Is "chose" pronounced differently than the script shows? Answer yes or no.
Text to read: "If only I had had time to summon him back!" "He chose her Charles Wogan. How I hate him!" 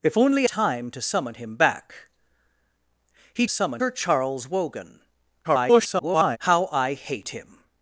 yes